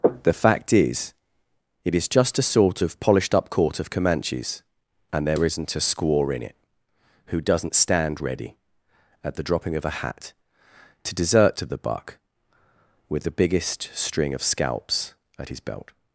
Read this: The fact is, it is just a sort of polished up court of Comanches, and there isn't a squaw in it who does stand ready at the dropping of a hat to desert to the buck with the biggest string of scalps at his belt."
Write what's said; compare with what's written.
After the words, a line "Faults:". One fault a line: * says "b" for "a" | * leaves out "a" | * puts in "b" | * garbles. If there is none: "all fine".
The fact is, it is just a sort of polished up court of Comanches, and there isn't a squaw in it who doesn't stand ready at the dropping of a hat to desert to the buck with the biggest string of scalps at his belt."
Faults:
* says "doesn't" for "does"